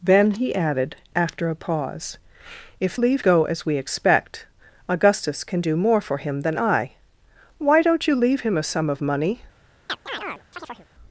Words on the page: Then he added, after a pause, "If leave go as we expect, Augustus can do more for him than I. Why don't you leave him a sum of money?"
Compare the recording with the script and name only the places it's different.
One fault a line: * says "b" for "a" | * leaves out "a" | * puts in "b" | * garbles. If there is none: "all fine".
all fine